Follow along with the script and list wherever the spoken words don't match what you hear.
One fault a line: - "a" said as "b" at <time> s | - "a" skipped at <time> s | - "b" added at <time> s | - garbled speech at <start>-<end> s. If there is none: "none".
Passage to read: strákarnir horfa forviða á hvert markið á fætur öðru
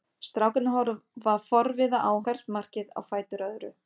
none